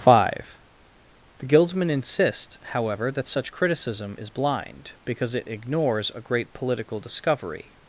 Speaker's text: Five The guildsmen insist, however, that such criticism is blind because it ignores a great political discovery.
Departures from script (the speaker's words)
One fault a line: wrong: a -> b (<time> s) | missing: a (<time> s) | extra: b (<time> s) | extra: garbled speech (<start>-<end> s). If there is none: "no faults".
no faults